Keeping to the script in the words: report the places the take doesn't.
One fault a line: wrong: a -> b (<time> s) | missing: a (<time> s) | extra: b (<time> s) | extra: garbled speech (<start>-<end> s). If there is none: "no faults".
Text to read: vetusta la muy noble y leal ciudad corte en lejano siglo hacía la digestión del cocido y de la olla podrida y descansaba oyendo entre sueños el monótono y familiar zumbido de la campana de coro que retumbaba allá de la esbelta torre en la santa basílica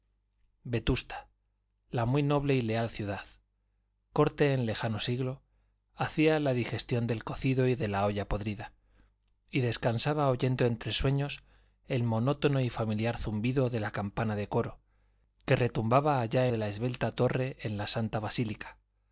no faults